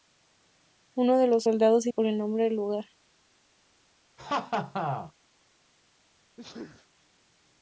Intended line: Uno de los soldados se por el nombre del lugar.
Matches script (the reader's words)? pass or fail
pass